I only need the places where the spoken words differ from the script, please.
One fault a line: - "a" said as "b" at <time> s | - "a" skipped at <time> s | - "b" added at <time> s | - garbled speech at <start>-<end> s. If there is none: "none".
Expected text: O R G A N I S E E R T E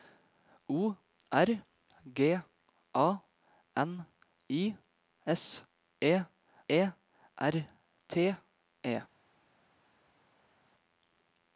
none